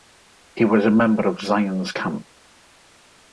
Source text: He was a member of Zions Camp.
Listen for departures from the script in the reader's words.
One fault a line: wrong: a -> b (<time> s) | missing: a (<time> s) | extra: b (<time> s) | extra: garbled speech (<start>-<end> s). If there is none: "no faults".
no faults